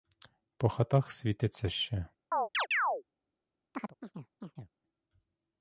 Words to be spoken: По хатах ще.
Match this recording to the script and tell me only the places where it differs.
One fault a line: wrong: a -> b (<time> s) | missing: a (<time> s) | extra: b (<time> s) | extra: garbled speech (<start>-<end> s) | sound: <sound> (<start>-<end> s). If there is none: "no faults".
extra: світиться (1.1 s)
sound: chirp (2.3-3.0 s)
sound: chirp (3.7-4.7 s)